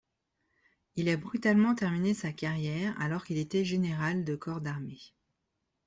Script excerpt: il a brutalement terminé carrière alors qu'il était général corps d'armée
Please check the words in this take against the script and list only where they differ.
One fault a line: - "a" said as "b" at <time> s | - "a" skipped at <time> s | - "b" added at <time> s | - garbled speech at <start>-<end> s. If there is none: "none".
- "sa" added at 2.1 s
- "de" added at 4.2 s